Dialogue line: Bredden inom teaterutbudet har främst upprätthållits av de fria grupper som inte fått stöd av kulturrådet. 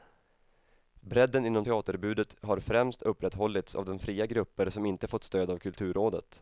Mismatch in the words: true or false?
false